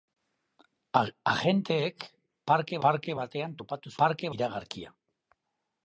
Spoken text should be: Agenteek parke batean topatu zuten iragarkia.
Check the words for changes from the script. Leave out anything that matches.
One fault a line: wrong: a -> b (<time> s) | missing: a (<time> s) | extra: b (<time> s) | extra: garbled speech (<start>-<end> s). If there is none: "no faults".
extra: parke (2.9 s)
wrong: zuten -> parke (4.0 s)